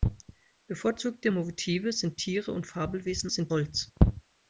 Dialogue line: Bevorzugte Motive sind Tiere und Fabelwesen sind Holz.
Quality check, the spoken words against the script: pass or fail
pass